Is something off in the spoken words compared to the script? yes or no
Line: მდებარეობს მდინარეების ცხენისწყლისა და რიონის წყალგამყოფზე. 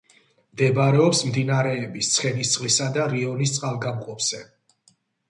no